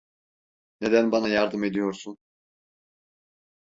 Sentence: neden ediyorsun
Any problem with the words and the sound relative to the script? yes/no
yes